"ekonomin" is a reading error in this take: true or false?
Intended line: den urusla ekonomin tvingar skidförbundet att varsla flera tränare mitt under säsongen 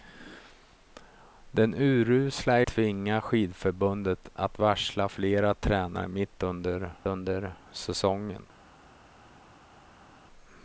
true